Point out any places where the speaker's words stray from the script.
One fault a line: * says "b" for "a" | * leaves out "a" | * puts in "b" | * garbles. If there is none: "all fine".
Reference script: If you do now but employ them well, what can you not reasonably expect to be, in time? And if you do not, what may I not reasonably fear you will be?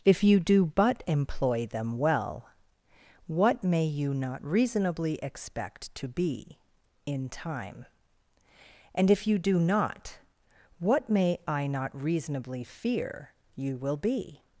* leaves out "now"
* says "may" for "can"